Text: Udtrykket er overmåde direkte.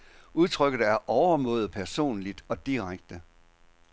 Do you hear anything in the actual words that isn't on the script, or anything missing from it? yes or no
yes